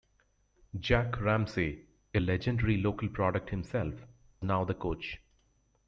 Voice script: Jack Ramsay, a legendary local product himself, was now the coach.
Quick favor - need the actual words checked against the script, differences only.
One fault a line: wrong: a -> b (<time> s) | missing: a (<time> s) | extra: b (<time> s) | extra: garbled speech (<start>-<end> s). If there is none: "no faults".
missing: was (3.9 s)